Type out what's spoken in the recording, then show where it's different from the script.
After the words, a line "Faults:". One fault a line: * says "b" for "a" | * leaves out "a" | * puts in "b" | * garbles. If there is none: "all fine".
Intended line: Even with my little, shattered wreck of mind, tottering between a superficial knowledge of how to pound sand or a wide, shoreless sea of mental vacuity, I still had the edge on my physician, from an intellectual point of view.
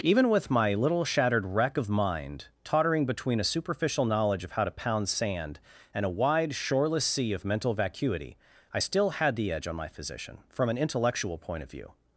Even with my little, shattered wreck of mind, tottering between a superficial knowledge of how to pound sand and a wide, shoreless sea of mental vacuity, I still had the edge on my physician, from an intellectual point of view.
Faults:
* says "and" for "or"